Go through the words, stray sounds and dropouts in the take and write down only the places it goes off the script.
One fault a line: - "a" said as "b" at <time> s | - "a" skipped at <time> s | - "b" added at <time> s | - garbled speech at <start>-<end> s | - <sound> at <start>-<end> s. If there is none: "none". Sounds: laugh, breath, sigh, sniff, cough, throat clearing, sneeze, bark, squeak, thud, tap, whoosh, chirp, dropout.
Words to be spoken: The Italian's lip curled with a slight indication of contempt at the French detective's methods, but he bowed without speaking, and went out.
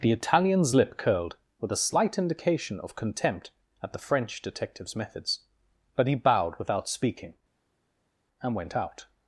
none